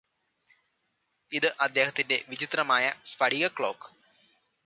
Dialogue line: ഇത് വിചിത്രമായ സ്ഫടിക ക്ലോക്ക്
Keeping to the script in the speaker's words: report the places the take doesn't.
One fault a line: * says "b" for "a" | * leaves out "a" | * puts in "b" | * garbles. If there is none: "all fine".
* puts in "അദ്ദേഹത്തിന്റെ"